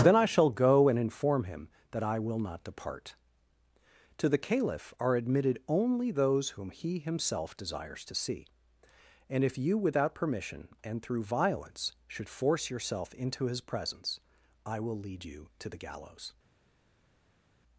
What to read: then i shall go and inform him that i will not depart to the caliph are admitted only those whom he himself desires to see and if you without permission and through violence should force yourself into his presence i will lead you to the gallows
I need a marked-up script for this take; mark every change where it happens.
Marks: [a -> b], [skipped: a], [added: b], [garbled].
then i shall go and inform him that i will not depart to the caliph are admitted only those whom he himself desires to see and if you without permission and through violence should force yourself into his presence i will lead you to the gallows